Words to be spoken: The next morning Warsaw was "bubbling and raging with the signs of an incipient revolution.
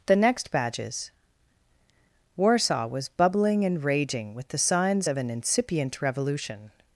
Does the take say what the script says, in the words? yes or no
no